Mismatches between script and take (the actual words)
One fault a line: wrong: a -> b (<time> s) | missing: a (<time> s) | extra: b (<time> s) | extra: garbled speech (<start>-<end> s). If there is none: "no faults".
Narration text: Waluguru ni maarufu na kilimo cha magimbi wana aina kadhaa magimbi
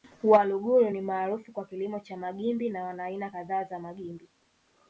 wrong: na -> kwa (1.5 s)
extra: na (2.7 s)
extra: za (3.6 s)